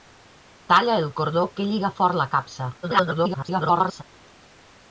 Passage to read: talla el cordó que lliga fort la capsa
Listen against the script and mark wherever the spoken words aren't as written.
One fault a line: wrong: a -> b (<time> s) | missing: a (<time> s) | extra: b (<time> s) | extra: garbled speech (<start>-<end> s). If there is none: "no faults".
extra: garbled speech (2.8-4.0 s)